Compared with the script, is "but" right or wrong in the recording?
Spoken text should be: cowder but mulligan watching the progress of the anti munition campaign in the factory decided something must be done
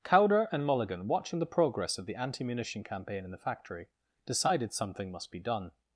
wrong